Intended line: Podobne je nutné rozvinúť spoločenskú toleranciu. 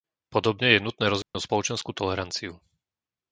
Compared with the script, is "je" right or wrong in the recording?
right